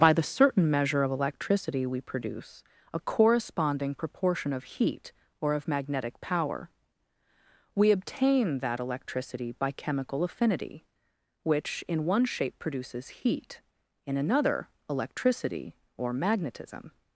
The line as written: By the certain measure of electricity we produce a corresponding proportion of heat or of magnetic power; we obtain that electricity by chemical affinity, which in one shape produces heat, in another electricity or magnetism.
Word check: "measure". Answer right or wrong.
right